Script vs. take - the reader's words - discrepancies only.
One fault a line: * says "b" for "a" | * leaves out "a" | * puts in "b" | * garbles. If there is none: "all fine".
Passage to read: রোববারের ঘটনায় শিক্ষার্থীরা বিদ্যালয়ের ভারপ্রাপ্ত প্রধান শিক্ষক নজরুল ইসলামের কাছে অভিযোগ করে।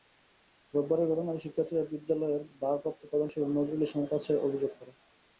all fine